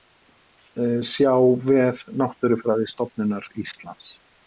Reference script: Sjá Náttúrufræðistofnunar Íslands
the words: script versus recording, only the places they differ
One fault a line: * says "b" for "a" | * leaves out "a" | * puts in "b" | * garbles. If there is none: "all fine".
* puts in "vef"